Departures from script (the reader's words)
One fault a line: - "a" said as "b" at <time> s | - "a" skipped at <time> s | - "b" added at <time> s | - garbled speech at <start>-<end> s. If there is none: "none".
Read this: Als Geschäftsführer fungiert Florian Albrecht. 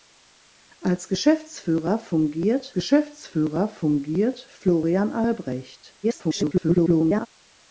- "Geschäftsführer fungiert" added at 2.7 s
- garbled speech at 6.0-7.3 s